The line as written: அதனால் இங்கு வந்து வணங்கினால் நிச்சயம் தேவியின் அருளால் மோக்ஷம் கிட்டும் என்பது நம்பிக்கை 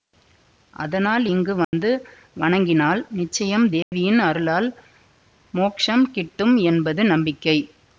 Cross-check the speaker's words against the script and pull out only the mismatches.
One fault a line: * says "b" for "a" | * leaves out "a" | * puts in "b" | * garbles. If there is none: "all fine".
all fine